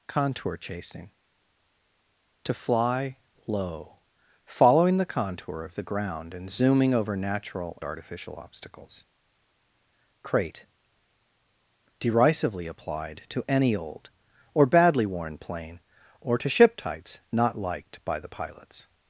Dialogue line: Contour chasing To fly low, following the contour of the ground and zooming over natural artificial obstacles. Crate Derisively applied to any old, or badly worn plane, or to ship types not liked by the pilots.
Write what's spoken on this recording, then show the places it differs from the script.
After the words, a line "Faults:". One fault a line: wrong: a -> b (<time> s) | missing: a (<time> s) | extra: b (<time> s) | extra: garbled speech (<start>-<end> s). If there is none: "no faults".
Contour chasing To fly low, following the contour of the ground and zooming over natural artificial obstacles. Crate Derisively applied to any old, or badly worn plane, or to ship types not liked by the pilots.
Faults:
no faults